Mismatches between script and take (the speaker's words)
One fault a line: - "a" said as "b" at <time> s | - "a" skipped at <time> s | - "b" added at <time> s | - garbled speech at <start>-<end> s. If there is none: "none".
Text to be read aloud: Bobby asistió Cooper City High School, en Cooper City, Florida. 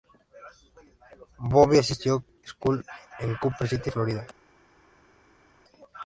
- "Cooper City High" skipped at 2.2 s